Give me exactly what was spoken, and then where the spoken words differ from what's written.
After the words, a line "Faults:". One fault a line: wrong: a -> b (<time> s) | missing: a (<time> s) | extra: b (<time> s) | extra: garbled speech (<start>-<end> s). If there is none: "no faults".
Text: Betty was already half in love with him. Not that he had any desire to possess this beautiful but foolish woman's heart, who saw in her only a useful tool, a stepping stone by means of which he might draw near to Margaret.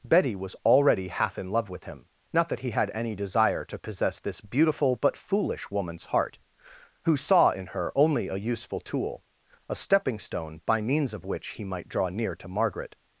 Betty was already half in love with him. Not that he had any desire to possess this beautiful but foolish woman's heart, who saw in her only a useful tool, a stepping stone by means of which he might draw near to Margaret.
Faults:
no faults